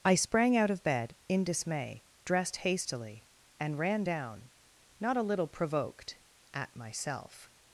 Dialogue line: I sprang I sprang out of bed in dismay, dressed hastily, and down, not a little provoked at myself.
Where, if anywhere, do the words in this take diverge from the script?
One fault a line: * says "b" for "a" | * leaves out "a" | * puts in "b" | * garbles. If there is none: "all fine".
* leaves out "I sprang"
* puts in "ran"